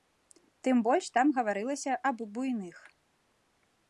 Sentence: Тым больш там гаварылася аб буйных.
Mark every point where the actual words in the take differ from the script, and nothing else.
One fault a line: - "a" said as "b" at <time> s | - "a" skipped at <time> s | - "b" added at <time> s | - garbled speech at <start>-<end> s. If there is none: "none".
none